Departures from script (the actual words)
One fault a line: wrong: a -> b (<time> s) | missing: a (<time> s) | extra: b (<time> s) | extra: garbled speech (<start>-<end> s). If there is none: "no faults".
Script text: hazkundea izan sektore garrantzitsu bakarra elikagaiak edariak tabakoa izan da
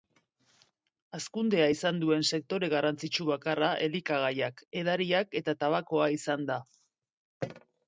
extra: duen (2.0 s)
extra: eta (5.4 s)